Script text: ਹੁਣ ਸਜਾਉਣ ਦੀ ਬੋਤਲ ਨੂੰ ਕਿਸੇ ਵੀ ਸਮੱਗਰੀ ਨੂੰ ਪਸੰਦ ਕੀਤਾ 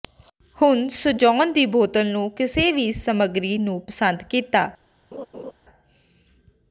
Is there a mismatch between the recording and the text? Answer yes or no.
no